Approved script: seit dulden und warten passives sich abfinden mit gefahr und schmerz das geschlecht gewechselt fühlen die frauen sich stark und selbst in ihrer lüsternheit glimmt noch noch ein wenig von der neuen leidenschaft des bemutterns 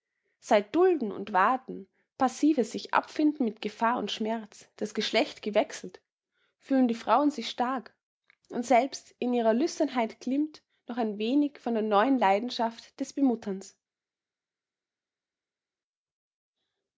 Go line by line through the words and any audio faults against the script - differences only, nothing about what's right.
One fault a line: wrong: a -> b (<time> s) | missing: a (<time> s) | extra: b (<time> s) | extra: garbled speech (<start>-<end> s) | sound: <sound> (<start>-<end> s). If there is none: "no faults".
missing: noch (11.0 s)